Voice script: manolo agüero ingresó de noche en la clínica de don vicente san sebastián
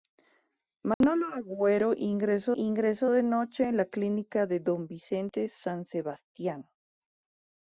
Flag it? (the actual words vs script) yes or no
yes